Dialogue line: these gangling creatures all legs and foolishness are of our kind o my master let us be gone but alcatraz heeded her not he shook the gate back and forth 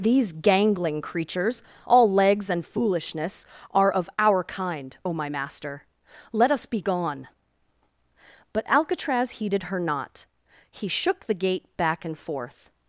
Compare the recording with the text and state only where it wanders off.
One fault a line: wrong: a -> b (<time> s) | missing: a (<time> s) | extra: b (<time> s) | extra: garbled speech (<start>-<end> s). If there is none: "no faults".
no faults